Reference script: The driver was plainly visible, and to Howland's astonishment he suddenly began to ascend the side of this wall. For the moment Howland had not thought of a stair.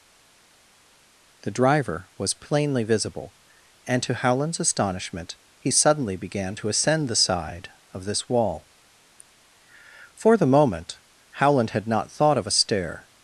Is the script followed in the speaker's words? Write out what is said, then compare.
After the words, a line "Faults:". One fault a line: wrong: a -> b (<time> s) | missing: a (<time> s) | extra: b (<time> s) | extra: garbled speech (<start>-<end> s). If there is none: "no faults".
The driver was plainly visible, and to Howland's astonishment he suddenly began to ascend the side of this wall. For the moment Howland had not thought of a stair.
Faults:
no faults